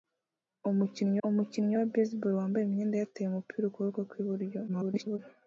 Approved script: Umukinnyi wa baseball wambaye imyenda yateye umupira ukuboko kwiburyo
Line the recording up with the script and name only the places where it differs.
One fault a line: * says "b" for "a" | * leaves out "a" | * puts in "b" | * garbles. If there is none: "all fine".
* puts in "umukinnyi"
* garbles